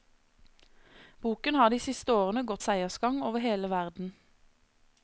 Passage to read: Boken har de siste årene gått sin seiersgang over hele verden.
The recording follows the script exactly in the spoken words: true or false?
false